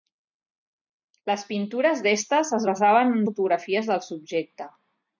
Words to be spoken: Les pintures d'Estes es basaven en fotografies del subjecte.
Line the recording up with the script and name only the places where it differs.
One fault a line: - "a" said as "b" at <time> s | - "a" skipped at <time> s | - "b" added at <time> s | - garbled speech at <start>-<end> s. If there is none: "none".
none